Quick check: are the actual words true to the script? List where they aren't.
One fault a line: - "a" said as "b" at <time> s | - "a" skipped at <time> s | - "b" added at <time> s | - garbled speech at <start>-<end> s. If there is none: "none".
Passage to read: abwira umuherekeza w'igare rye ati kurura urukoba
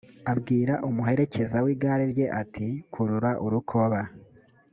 none